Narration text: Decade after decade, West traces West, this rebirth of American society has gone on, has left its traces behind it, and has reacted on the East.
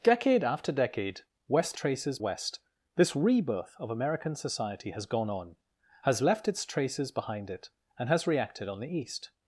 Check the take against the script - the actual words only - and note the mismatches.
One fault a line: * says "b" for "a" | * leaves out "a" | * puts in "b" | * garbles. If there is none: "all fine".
all fine